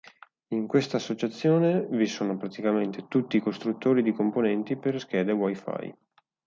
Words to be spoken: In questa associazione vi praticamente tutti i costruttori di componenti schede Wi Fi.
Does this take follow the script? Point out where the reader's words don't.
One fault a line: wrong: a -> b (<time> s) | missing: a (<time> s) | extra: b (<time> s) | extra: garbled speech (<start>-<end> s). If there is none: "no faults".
extra: sono (2.1 s)
extra: per (4.8 s)